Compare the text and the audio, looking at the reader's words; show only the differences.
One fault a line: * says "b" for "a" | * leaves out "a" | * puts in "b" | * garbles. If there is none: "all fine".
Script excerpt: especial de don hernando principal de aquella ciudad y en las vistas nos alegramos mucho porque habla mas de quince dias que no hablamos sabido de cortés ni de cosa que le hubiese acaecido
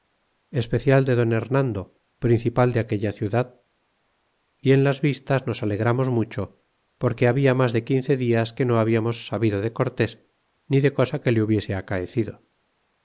all fine